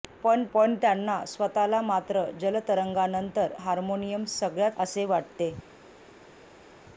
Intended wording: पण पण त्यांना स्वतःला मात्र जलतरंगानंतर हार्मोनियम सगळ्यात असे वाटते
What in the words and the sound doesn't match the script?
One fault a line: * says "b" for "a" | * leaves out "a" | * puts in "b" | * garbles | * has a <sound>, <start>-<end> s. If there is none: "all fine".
all fine